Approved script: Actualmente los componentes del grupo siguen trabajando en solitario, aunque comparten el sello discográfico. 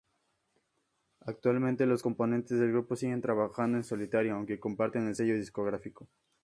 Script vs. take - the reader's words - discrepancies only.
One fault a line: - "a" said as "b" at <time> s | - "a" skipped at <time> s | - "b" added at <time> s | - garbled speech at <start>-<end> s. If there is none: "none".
none